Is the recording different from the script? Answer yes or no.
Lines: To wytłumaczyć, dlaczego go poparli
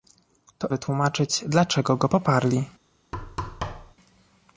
no